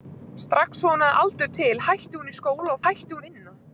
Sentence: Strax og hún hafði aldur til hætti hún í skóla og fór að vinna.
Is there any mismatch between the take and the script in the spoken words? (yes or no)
yes